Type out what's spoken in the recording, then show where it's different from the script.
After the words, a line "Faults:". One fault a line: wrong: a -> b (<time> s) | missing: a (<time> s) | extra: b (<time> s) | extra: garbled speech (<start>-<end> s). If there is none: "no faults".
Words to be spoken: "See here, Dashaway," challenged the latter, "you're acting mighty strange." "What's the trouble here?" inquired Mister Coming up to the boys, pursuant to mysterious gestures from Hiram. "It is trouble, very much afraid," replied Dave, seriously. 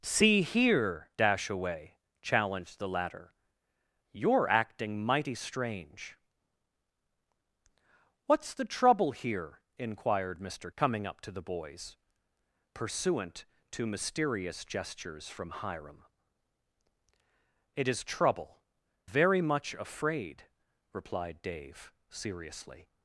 "See here, Dashaway," challenged the latter, "you're acting mighty strange." "What's the trouble here?" inquired Mister Coming up to the boys, pursuant to mysterious gestures from Hiram. "It is trouble, very much afraid," replied Dave, seriously.
Faults:
no faults